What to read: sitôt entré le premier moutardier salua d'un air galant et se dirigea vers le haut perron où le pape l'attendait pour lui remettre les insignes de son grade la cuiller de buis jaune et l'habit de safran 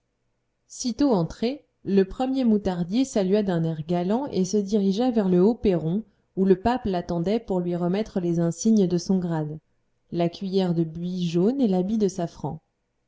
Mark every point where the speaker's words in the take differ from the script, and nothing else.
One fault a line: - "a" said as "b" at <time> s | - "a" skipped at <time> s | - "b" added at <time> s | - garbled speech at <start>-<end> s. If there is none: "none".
none